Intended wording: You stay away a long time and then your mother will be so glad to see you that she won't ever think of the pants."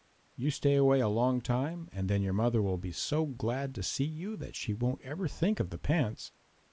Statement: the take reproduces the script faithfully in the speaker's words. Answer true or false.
true